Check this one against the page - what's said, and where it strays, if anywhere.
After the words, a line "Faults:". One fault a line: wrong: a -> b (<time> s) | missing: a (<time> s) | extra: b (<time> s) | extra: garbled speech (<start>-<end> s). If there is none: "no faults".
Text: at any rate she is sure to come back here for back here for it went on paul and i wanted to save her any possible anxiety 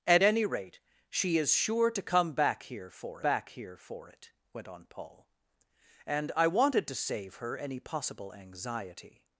at any rate she is sure to come back here for back here for it went on paul and i wanted to save her any possible anxiety
Faults:
no faults